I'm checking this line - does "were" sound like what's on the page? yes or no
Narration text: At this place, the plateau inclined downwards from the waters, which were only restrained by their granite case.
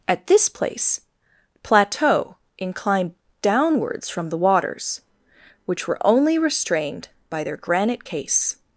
yes